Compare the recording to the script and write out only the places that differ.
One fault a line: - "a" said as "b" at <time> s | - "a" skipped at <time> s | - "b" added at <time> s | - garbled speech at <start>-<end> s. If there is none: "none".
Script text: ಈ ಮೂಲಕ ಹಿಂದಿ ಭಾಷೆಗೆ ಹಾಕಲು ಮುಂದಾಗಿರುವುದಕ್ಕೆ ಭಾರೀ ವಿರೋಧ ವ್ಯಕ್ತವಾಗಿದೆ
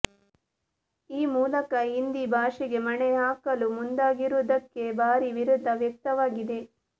- "ಮಣೆ" added at 2.9 s